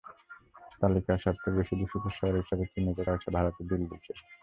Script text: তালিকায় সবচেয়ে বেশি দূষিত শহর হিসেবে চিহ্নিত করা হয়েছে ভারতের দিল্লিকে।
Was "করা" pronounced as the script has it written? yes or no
no